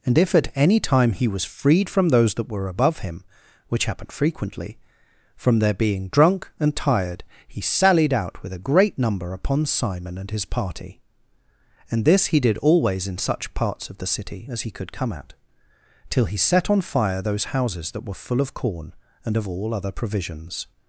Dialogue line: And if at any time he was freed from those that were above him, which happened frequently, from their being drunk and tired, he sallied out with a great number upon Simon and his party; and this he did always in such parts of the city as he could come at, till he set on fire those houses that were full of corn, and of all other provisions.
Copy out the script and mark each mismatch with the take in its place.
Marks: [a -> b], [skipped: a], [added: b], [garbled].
And if at any time he was freed from those that were above him, which happened frequently, from their being drunk and tired, he sallied out with a great number upon Simon and his party; and this he did always in such parts of the city as he could come at, till he set on fire those houses that were full of corn, and of all other provisions.